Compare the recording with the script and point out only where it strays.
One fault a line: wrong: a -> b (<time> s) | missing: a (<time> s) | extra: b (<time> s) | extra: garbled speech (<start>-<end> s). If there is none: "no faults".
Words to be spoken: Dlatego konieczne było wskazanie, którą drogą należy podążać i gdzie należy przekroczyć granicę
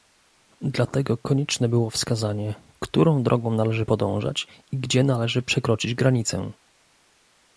no faults